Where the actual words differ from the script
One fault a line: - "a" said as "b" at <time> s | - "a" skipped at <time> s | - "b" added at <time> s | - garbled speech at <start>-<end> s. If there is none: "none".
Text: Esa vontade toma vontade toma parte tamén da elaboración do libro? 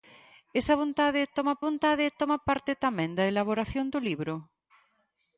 none